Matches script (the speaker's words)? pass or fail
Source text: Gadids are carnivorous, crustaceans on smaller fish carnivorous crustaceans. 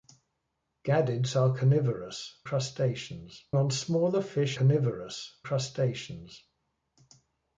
pass